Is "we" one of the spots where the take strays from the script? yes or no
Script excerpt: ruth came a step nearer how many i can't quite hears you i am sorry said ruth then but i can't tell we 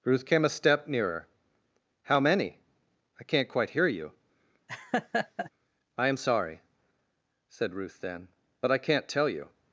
yes